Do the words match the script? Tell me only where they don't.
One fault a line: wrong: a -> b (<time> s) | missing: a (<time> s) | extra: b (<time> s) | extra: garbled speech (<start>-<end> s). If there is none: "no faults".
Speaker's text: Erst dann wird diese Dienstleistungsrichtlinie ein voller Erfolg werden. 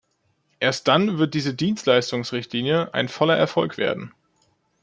no faults